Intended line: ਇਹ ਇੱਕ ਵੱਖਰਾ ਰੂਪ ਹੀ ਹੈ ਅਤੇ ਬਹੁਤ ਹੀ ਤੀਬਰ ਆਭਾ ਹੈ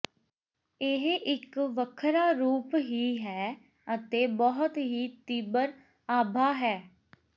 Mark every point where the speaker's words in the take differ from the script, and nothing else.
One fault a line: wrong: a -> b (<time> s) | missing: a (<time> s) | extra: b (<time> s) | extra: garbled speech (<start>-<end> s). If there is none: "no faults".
no faults